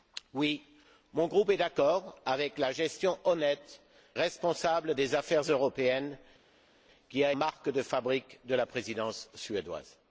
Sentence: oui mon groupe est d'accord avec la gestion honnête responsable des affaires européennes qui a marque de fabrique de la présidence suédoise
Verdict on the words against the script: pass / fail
pass